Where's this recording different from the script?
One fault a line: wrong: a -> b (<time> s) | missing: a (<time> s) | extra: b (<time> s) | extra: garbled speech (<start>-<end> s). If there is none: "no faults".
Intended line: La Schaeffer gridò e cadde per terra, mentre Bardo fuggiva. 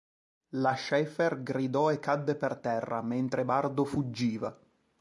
no faults